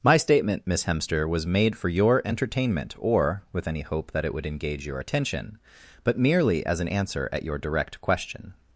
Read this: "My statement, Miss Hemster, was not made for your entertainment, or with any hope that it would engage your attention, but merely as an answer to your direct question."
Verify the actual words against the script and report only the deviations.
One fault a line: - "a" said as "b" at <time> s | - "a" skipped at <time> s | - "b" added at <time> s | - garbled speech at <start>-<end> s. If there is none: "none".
- "not" skipped at 1.4 s
- "to" said as "at" at 7.3 s